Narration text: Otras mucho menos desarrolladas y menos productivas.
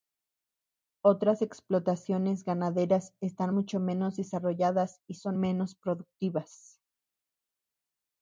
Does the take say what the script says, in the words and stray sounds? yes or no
no